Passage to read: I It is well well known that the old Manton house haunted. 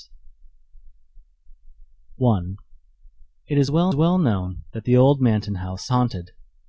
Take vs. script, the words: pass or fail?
pass